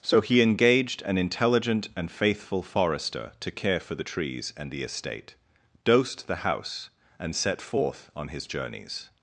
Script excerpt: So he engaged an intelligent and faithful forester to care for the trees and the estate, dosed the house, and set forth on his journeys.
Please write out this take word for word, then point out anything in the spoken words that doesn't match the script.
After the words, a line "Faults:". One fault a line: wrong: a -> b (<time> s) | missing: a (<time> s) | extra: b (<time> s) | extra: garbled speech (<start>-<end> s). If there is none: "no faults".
So he engaged an intelligent and faithful forester to care for the trees and the estate, dosed the house, and set forth on his journeys.
Faults:
no faults